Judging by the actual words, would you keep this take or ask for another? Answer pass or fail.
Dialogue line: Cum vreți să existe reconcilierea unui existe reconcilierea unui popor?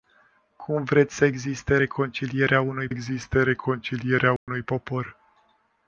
pass